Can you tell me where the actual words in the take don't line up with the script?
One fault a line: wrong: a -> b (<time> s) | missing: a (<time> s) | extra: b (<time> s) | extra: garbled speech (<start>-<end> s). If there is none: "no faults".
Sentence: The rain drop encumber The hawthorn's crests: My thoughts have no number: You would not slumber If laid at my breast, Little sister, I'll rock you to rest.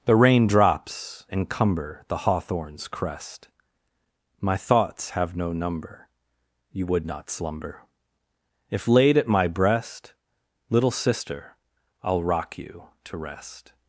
wrong: drop -> drops (0.5 s)
wrong: crests -> crest (2.9 s)